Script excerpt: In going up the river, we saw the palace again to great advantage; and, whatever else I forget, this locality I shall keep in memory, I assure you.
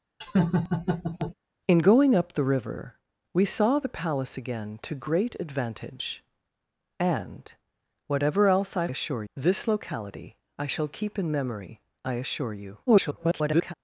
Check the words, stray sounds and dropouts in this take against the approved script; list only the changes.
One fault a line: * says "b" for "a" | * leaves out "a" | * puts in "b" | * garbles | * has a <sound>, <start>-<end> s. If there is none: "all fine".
* has a laugh, 0.2-1.4 s
* says "assure" for "forget"
* garbles